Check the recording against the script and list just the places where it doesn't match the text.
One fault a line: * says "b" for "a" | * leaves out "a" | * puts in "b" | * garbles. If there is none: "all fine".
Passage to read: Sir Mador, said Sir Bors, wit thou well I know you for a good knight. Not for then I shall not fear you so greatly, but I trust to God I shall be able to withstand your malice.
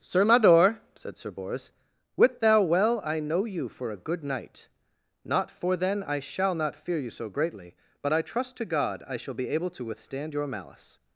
all fine